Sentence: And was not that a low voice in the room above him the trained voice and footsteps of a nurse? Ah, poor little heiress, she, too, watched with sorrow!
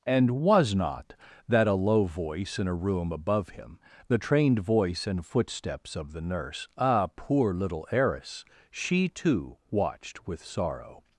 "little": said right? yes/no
yes